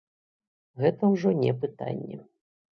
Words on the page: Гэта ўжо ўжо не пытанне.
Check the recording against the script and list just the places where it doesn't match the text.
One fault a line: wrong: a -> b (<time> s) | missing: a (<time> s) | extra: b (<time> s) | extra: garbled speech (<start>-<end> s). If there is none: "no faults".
missing: ўжо (1.4 s)